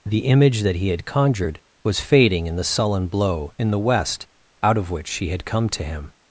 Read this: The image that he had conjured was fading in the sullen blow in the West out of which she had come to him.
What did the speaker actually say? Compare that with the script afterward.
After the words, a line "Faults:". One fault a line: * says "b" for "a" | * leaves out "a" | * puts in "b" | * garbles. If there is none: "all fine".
The image that he had conjured was fading in the sullen blow in the West out of which she had come to him.
Faults:
all fine